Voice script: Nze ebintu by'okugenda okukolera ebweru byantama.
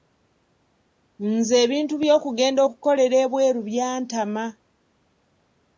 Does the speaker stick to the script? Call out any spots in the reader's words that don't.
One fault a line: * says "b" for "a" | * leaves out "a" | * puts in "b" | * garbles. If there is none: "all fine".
all fine